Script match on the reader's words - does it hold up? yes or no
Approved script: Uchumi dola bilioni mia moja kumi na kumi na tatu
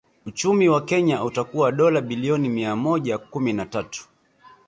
no